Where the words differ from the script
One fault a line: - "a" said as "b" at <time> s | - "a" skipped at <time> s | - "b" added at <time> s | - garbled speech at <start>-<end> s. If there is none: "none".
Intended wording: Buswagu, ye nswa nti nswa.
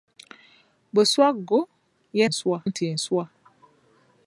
none